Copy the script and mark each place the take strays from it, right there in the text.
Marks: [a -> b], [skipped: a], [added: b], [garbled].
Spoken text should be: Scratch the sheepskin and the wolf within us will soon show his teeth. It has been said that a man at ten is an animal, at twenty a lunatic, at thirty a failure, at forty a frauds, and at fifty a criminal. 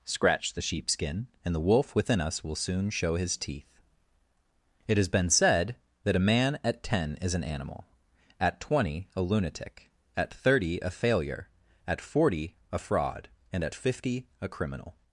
Scratch the sheepskin and the wolf within us will soon show his teeth. It has been said that a man at ten is an animal, at twenty a lunatic, at thirty a failure, at forty a [frauds, -> fraud] and at fifty a criminal.